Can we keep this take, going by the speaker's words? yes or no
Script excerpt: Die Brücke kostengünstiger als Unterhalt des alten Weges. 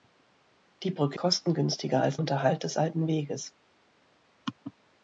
yes